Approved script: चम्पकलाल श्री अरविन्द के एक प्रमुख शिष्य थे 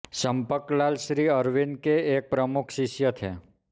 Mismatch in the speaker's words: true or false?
false